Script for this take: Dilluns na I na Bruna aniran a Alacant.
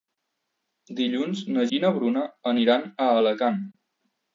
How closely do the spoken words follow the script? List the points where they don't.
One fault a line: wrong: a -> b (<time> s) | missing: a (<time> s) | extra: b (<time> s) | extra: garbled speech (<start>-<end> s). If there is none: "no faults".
no faults